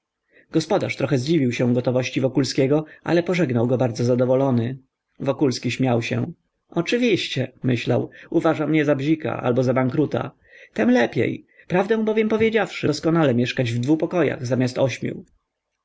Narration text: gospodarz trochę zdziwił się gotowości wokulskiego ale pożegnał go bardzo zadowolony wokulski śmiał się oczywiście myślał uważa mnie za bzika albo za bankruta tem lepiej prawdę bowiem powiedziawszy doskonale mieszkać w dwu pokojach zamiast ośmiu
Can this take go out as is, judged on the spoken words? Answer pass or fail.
pass